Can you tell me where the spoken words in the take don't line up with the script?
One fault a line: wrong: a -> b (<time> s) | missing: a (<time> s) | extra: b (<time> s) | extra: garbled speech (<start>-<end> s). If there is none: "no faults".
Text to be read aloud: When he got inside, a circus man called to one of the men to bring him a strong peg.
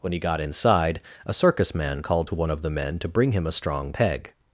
no faults